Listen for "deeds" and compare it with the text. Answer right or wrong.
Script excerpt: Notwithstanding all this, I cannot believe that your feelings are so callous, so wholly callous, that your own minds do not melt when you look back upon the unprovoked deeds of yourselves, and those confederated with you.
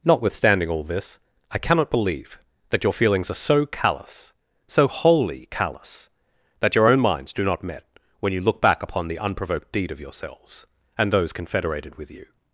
wrong